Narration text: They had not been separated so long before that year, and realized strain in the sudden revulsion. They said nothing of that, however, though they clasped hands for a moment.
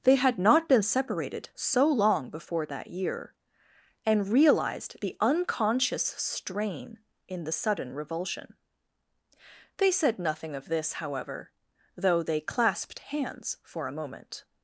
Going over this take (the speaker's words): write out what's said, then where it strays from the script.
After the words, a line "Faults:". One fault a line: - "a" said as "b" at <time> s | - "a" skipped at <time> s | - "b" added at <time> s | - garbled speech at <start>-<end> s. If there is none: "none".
They had not been separated so long before that year, and realized the unconscious strain in the sudden revulsion. They said nothing of this, however, though they clasped hands for a moment.
Faults:
- "the unconscious" added at 5.0 s
- "that" said as "this" at 10.7 s